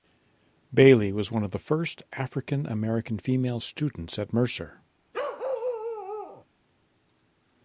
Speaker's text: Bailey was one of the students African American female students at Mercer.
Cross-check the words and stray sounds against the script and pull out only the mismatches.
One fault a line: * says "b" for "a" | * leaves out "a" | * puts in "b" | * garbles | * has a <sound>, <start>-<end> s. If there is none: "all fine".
* says "first" for "students"
* has a bark, 5.1-6.5 s